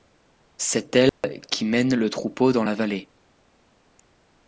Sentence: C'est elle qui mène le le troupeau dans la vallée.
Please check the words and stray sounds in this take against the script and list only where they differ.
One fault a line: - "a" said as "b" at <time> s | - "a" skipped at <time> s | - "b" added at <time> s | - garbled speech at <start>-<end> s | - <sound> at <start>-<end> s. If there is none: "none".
- dropout at 1.1-1.2 s
- "le" skipped at 2.1 s